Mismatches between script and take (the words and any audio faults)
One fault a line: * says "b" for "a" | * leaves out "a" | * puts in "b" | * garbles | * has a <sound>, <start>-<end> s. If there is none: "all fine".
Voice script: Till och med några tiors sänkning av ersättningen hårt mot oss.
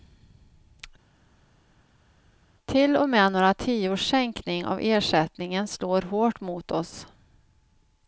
* puts in "slår"